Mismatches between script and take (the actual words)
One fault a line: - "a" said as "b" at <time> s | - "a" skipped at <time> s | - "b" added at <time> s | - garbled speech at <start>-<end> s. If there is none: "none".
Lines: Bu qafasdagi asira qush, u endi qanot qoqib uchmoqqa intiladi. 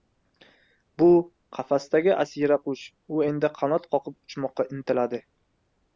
none